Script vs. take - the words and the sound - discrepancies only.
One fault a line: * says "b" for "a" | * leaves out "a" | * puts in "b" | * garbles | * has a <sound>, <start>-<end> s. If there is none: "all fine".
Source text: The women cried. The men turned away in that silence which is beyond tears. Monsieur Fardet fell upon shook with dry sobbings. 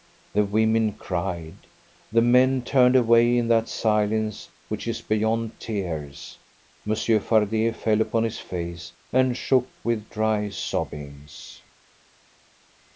* puts in "his face and"